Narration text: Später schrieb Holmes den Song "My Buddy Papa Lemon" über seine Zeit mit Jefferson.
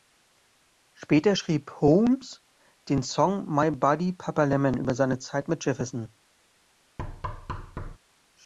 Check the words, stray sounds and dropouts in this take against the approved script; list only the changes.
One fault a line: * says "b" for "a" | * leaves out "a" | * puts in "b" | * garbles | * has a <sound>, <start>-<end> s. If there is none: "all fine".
* has a thud, 7.0-8.0 s